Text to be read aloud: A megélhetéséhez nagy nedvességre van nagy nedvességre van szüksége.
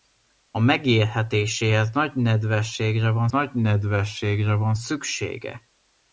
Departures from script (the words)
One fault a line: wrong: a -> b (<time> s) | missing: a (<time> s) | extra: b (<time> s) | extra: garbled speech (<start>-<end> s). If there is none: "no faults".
no faults